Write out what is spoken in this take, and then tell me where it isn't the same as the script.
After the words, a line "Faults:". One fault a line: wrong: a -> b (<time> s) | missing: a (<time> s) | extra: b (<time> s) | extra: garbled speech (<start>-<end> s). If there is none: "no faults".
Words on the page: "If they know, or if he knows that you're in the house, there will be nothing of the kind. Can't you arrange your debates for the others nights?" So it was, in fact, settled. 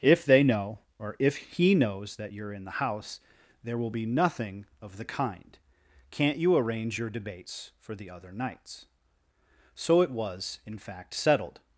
"If they know, or if he knows that you're in the house, there will be nothing of the kind. Can't you arrange your debates for the other nights?" So it was, in fact, settled.
Faults:
wrong: others -> other (8.1 s)